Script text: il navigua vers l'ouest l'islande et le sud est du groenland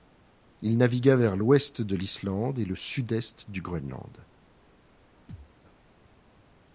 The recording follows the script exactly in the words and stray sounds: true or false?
false